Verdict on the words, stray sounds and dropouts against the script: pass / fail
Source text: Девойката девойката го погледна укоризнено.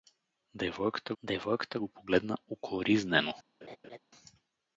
fail